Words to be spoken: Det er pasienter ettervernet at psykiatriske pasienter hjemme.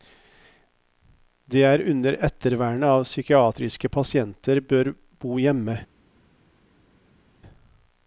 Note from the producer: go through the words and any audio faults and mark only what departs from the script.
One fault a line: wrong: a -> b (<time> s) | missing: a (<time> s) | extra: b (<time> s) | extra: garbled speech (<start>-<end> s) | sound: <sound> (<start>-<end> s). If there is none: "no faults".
wrong: pasienter -> under (1.9 s)
extra: bør bo (4.6 s)